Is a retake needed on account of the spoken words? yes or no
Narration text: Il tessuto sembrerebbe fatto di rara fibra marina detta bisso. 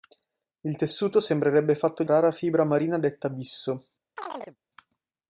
no